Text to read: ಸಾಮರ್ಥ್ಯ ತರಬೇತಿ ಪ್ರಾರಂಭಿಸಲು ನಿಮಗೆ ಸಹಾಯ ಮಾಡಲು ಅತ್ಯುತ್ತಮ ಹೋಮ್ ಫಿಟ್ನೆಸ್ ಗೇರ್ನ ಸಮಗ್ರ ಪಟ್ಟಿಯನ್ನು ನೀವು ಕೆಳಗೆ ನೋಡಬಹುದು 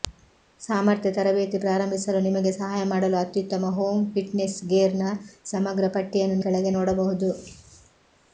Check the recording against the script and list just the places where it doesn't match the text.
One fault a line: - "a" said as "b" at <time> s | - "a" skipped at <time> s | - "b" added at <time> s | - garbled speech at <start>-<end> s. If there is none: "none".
- "ನೀವು" skipped at 6.4 s